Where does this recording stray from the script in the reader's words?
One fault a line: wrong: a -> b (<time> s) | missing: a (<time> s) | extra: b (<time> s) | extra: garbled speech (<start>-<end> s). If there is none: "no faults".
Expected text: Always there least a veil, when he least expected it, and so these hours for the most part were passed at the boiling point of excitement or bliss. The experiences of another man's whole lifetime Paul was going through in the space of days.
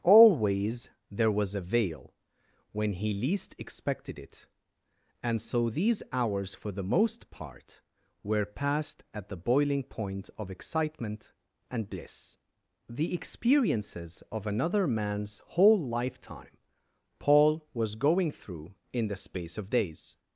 wrong: least -> was (1.3 s)
wrong: or -> and (11.7 s)